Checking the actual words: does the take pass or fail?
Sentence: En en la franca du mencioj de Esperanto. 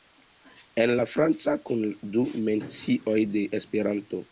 fail